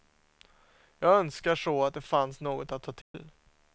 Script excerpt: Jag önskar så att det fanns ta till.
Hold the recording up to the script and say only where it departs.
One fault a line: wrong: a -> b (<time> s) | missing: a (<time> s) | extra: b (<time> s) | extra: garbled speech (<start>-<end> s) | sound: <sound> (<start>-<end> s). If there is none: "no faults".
extra: något att (2.4 s)
sound: dropout (3.0-3.1 s)